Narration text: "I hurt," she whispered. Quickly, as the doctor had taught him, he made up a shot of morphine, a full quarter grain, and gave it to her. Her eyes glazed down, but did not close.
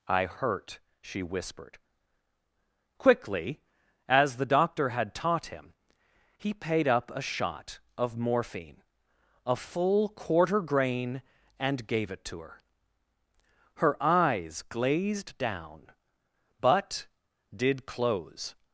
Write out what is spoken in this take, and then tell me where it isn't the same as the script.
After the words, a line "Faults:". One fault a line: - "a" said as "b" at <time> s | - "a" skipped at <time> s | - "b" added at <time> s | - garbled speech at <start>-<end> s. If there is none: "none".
"I hurt," she whispered. Quickly, as the doctor had taught him, he paid up a shot of morphine, a full quarter grain, and gave it to her. Her eyes glazed down, but did close.
Faults:
- "made" said as "paid" at 6.5 s
- "not" skipped at 17.9 s